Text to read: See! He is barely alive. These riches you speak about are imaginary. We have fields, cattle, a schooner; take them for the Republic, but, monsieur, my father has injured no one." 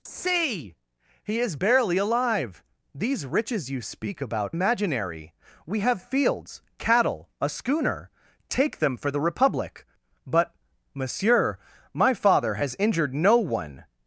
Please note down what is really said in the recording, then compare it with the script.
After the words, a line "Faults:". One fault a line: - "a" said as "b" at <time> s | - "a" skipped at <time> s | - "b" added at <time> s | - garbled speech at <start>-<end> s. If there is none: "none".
See! He is barely alive. These riches you speak about imaginary. We have fields, cattle, a schooner; take them for the Republic, but, monsieur, my father has injured no one."
Faults:
- "are" skipped at 4.5 s